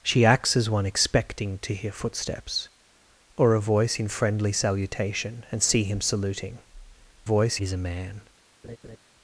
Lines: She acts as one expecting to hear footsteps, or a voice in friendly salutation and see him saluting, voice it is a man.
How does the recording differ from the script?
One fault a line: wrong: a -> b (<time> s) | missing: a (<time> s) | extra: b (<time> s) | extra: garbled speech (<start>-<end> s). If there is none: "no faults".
no faults